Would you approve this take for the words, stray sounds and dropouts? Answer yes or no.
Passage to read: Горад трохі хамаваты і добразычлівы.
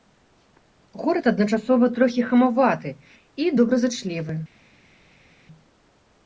no